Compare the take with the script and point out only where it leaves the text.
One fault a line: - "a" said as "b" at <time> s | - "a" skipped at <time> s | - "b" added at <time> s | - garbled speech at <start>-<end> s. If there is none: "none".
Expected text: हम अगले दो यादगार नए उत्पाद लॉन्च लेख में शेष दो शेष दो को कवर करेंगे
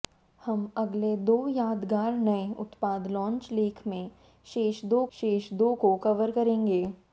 none